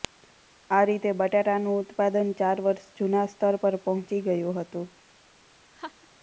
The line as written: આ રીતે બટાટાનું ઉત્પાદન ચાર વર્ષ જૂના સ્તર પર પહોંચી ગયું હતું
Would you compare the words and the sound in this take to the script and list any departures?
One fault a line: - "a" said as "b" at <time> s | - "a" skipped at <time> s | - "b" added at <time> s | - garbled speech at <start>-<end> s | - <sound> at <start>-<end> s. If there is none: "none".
- laugh at 5.7-6.1 s